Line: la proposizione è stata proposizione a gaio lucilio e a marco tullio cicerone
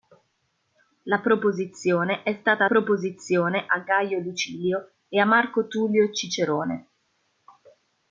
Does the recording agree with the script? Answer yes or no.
yes